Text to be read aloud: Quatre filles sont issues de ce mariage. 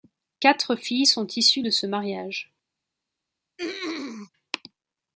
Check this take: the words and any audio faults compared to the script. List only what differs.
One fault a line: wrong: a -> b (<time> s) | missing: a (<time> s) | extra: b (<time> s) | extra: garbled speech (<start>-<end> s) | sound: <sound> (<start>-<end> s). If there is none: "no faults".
sound: throat clearing (3.6-4.3 s)